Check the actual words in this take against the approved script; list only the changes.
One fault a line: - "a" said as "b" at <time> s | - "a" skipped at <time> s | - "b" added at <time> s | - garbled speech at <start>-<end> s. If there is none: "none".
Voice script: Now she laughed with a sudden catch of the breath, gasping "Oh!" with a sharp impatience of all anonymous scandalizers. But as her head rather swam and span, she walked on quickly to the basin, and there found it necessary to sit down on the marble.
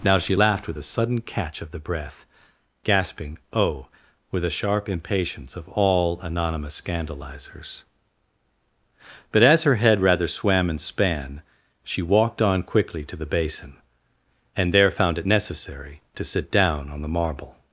none